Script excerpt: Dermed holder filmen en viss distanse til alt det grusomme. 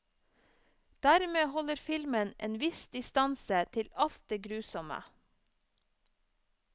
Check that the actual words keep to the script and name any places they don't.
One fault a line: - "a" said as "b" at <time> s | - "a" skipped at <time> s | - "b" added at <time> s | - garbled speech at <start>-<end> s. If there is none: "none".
none